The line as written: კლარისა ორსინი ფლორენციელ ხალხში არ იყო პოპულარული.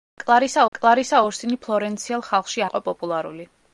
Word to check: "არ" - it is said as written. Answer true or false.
false